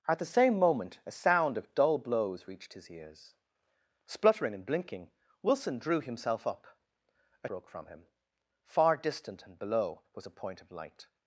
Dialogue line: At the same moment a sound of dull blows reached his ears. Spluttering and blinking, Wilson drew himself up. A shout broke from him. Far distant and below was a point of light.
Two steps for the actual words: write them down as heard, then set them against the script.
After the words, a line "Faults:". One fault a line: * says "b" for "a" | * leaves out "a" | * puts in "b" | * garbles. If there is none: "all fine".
At the same moment a sound of dull blows reached his ears. Spluttering and blinking, Wilson drew himself up. A broke from him. Far distant and below was a point of light.
Faults:
* leaves out "shout"